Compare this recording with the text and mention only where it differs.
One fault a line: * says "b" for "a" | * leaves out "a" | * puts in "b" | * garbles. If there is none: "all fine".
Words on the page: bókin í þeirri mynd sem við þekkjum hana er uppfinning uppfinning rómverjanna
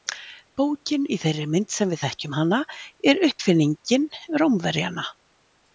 * leaves out "uppfinning"